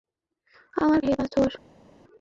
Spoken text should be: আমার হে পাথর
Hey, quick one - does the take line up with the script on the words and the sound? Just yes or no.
yes